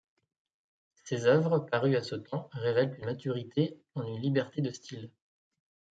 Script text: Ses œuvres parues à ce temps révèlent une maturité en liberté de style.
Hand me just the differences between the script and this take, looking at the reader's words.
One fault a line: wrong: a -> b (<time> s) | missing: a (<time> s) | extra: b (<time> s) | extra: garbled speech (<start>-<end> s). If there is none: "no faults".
extra: une (4.1 s)